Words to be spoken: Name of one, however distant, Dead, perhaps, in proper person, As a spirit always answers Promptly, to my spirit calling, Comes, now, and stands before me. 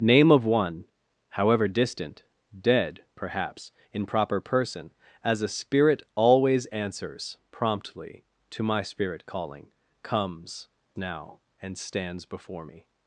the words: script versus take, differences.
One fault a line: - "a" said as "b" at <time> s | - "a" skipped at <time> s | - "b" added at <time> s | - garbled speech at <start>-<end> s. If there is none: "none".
none